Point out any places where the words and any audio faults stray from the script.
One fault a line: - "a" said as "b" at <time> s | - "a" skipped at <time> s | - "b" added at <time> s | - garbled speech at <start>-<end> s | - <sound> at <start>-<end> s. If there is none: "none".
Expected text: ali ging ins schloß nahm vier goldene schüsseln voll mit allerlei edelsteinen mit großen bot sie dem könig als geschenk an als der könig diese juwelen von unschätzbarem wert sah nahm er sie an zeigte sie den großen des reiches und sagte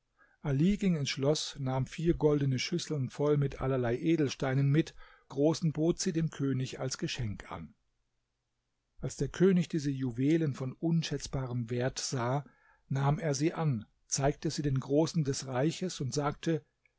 none